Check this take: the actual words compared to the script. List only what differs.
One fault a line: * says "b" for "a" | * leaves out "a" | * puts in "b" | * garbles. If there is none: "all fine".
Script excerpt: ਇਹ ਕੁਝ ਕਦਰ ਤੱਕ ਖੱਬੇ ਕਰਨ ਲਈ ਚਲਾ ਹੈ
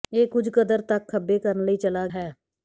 all fine